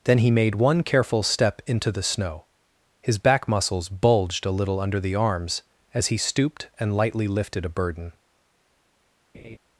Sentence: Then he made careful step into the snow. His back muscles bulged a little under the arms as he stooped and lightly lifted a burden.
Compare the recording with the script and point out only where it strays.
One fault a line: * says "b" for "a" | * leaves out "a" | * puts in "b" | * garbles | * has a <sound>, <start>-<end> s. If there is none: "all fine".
* puts in "one"
* has a laugh, 9.3-9.6 s